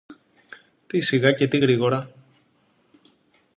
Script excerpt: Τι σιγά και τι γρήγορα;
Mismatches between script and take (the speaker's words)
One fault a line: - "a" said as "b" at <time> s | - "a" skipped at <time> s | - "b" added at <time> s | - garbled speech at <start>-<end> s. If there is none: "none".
none